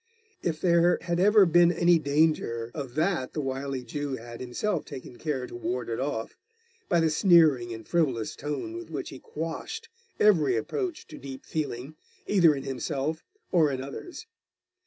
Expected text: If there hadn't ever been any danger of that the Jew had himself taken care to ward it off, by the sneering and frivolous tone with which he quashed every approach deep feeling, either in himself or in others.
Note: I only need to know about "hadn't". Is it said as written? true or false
false